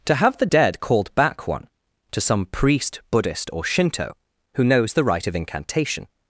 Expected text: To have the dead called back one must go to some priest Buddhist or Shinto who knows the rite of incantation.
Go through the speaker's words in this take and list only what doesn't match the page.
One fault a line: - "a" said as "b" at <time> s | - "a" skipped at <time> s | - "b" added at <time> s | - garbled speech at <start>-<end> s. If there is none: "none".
- "must go" skipped at 1.7 s